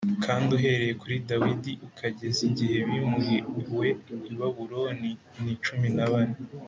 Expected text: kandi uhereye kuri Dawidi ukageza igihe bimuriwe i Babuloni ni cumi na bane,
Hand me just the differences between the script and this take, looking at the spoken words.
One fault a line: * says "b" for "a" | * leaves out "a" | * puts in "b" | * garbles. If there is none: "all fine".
all fine